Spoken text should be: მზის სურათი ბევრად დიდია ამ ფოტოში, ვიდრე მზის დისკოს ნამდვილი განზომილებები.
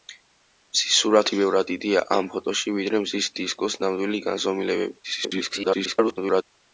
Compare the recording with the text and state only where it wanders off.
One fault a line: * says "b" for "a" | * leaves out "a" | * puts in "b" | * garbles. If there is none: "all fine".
* garbles